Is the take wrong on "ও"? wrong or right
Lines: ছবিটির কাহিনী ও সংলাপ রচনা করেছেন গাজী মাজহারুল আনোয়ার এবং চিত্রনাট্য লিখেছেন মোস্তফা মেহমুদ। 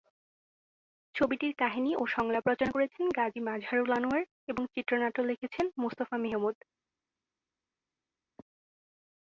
right